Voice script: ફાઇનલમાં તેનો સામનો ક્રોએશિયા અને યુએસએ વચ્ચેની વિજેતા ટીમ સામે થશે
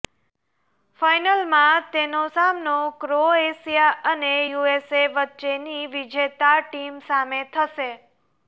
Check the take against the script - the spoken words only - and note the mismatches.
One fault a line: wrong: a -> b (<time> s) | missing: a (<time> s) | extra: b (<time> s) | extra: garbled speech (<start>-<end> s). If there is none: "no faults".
no faults